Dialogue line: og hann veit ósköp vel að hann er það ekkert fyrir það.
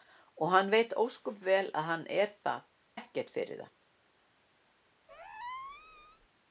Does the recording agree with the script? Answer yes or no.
yes